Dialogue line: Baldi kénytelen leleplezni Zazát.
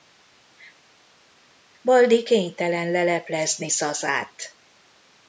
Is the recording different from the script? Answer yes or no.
no